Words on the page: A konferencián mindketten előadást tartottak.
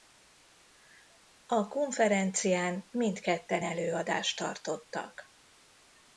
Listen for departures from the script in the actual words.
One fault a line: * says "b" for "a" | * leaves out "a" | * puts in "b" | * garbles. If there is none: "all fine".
all fine